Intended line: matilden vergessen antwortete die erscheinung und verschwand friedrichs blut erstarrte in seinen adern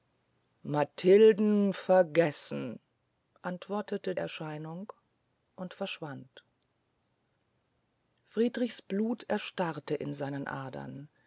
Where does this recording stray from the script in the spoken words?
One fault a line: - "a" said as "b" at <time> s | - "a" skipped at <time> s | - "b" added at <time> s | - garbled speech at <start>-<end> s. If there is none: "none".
- "die" skipped at 4.2 s